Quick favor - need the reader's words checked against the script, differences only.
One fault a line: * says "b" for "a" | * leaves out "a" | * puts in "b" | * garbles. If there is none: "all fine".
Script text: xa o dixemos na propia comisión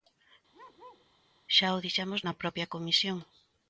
all fine